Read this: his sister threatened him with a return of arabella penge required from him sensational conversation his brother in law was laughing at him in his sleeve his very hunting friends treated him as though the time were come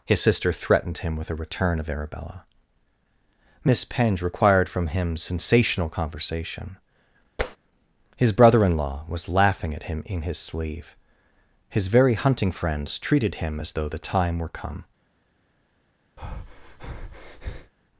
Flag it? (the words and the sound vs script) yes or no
yes